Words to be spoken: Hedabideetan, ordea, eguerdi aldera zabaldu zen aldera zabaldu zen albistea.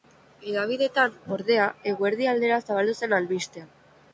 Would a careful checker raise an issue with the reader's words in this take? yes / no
yes